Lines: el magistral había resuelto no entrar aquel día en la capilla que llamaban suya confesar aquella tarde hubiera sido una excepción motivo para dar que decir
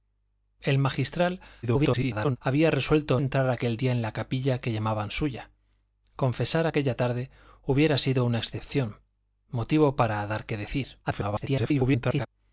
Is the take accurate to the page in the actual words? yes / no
no